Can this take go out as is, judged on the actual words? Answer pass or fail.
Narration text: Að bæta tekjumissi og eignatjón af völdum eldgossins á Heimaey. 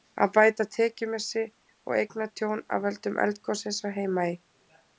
pass